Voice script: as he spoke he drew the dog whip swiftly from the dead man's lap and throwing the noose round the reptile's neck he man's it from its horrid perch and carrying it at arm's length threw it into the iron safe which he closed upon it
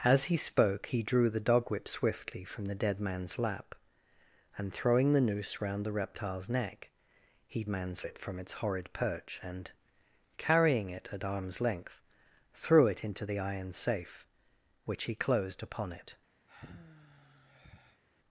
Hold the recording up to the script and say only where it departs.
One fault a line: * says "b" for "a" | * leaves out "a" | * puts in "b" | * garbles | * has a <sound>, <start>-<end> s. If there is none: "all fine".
* has a sigh, 16.5-18.0 s